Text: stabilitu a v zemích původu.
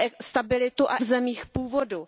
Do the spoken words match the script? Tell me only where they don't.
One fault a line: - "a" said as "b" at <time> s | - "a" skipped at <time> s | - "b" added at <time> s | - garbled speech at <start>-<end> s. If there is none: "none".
none